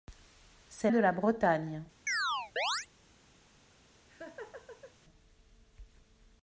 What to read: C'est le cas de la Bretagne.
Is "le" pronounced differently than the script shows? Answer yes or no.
yes